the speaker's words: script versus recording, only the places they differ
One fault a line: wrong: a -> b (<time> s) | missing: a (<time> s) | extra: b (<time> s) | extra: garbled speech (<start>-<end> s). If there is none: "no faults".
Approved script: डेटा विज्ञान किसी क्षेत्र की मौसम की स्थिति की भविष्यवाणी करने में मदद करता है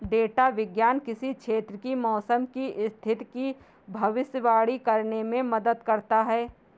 no faults